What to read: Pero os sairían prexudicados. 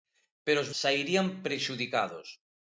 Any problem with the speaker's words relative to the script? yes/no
no